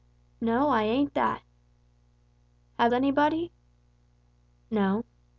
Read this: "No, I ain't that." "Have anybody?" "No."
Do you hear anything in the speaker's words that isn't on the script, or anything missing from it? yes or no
no